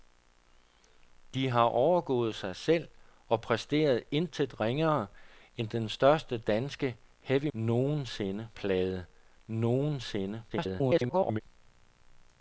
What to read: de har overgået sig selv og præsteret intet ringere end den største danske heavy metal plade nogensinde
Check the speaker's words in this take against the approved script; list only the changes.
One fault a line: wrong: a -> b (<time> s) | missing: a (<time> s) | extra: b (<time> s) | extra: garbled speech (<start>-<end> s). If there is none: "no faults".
wrong: metal -> nogensinde (7.5 s)
extra: garbled speech (10.5-11.4 s)